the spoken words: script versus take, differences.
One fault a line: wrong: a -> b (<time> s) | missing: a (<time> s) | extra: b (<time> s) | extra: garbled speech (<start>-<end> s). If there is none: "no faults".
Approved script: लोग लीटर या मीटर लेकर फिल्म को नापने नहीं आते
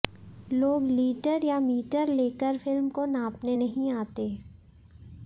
no faults